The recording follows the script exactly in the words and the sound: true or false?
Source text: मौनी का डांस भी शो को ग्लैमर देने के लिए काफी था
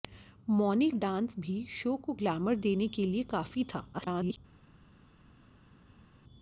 false